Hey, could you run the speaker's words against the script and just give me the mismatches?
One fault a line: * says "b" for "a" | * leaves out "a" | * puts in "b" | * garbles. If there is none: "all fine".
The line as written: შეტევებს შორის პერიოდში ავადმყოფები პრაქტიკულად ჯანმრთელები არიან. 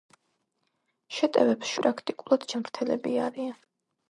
* leaves out "შორის პერიოდში ავადმყოფები"